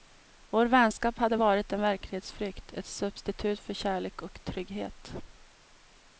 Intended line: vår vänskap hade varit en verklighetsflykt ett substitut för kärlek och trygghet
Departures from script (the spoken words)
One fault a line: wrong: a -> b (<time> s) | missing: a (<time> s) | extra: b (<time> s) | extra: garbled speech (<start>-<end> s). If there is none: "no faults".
no faults